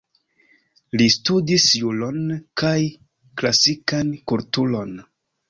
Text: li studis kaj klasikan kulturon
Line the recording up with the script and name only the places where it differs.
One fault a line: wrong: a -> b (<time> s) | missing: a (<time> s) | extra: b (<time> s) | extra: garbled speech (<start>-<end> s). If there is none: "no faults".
extra: juron (1.8 s)